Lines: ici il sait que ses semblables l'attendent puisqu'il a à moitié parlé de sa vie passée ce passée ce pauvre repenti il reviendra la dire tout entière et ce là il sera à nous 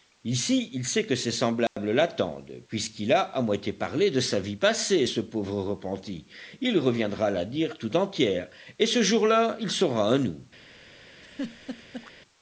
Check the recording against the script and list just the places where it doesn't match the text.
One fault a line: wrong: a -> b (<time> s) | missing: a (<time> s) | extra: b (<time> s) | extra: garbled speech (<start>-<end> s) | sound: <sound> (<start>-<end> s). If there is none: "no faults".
sound: dropout (1.7-1.8 s)
missing: passée ce (5.2 s)
extra: jour (9.0 s)
sound: laugh (11.2-12.1 s)